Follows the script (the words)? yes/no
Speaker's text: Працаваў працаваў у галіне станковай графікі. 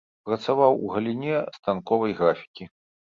no